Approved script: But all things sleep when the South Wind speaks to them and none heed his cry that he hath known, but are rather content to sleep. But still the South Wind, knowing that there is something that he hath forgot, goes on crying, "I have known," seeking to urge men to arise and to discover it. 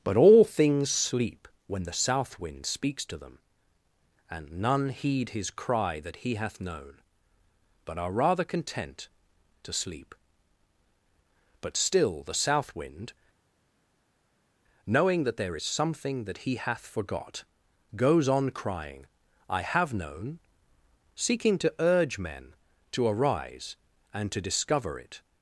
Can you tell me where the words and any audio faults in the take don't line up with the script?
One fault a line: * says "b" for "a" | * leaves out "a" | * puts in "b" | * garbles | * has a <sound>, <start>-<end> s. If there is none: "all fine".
all fine